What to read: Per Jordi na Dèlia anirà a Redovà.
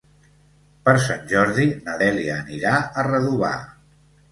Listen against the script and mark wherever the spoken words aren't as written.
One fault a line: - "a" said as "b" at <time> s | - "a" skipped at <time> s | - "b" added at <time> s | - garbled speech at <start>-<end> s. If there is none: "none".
- "Sant" added at 1.0 s